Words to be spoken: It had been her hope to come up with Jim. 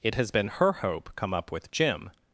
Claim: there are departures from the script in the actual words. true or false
true